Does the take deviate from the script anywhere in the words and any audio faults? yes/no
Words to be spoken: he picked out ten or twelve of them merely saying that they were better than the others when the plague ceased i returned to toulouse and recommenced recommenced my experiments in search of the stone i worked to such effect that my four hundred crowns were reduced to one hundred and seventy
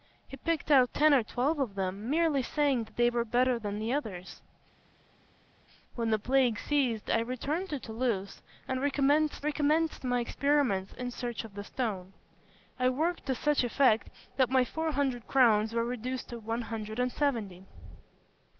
no